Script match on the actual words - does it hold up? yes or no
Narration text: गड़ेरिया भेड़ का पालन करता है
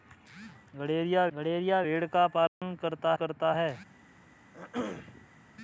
no